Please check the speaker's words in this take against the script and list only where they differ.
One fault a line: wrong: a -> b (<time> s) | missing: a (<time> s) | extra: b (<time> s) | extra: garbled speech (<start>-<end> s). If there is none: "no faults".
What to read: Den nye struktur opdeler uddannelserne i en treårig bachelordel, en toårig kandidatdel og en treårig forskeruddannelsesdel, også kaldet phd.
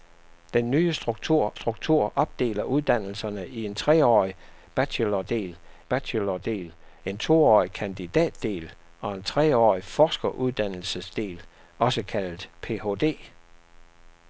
extra: struktur (1.5 s)
extra: bachelordel (5.9 s)